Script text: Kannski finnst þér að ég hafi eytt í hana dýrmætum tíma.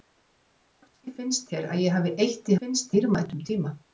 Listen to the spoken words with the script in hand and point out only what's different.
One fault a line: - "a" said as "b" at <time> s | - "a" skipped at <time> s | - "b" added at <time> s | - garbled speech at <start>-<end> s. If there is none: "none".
- "hana" said as "finnst" at 2.6 s